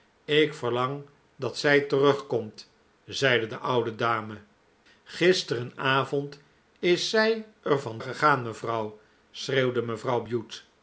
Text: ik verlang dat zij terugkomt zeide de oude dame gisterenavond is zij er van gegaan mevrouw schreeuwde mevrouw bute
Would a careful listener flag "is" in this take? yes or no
no